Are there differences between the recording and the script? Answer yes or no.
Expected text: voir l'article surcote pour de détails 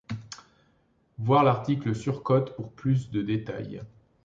yes